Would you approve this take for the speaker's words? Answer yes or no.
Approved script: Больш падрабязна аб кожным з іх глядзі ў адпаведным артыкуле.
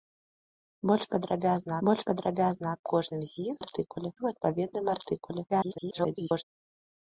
no